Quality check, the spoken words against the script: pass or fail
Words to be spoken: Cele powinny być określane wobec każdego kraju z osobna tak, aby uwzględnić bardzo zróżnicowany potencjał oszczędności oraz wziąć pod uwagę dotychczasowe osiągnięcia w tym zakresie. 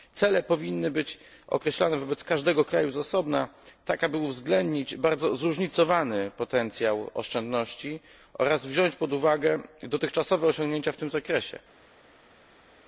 pass